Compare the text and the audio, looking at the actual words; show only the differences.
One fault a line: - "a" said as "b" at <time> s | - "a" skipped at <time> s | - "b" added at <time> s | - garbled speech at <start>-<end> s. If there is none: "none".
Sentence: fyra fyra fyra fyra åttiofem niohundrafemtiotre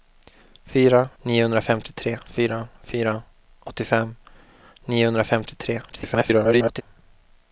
- "fyra" said as "niohundrafemtiotre" at 1.2 s
- garbled speech at 5.9-6.8 s